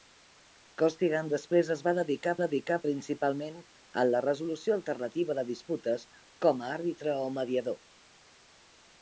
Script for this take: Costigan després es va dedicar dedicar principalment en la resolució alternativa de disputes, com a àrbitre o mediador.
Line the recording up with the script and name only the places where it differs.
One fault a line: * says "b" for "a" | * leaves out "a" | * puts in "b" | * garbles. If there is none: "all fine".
all fine